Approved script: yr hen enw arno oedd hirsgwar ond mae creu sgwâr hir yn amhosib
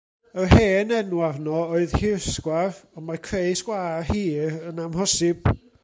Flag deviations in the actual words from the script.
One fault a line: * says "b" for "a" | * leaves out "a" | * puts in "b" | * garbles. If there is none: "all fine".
all fine